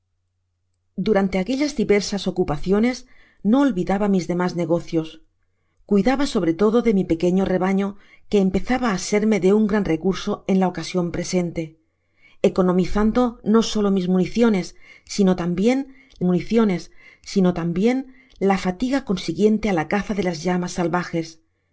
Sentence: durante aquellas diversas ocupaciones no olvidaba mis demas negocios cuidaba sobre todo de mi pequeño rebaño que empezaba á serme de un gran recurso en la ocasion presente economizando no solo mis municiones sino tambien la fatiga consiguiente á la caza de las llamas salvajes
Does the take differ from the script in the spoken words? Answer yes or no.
yes